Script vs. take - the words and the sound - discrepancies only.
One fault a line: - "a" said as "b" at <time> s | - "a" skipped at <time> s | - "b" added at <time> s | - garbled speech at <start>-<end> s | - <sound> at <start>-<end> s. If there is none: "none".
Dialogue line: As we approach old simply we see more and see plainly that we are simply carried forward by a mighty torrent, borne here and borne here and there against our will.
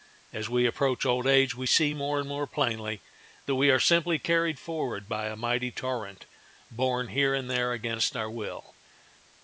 - "simply" said as "age" at 1.3 s
- "see" said as "more" at 2.3 s
- "borne here and" skipped at 7.5 s